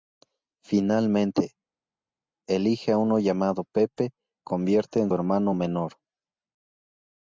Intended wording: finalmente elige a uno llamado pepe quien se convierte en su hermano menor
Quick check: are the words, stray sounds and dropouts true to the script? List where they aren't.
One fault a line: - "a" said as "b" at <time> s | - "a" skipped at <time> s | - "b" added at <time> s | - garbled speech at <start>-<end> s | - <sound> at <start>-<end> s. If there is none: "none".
- "quien se" skipped at 4.1 s
- "su" skipped at 5.1 s